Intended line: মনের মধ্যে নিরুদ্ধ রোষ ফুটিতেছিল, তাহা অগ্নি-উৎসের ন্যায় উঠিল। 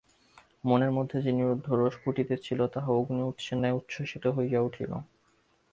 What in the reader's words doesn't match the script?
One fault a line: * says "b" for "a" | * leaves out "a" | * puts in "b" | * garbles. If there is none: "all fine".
* puts in "যে"
* puts in "উচ্ছ্বসিত হইয়া"